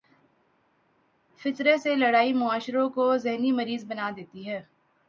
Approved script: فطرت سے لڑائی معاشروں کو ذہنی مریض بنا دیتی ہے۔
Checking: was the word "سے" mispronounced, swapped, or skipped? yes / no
no